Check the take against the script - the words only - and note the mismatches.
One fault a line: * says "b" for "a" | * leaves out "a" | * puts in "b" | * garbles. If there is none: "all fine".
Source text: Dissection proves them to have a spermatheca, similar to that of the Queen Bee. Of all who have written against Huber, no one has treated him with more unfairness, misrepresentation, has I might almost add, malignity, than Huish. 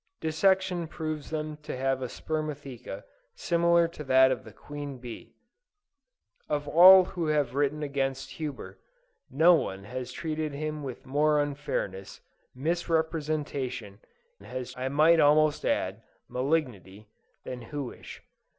all fine